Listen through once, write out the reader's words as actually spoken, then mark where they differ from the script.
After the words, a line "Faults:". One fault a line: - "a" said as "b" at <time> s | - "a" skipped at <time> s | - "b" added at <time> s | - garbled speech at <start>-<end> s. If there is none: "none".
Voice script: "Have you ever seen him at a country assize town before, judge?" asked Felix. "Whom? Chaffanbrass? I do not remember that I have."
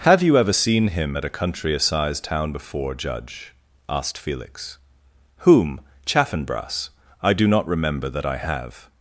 "Have you ever seen him at a country assize town before, judge?" asked Felix. "Whom? Chaffanbrass? I do not remember that I have."
Faults:
none